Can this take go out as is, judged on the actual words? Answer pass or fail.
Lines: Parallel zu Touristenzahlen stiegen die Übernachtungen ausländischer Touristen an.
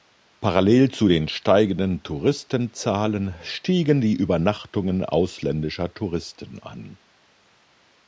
fail